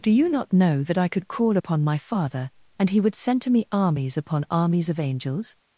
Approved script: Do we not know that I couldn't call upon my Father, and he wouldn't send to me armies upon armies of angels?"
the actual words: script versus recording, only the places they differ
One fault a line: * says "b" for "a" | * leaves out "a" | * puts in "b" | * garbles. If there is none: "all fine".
* says "you" for "we"
* says "could" for "couldn't"
* says "would" for "wouldn't"